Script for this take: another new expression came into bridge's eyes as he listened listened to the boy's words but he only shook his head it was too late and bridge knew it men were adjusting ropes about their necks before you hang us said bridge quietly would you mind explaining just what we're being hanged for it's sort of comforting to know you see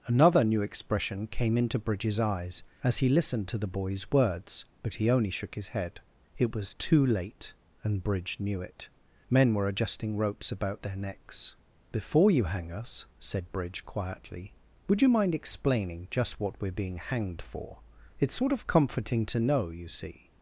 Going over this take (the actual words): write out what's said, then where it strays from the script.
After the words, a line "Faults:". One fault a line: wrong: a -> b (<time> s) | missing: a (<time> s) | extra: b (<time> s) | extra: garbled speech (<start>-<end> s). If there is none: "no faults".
another new expression came into bridge's eyes as he listened to the boy's words but he only shook his head it was too late and bridge knew it men were adjusting ropes about their necks before you hang us said bridge quietly would you mind explaining just what we're being hanged for it's sort of comforting to know you see
Faults:
missing: listened (3.5 s)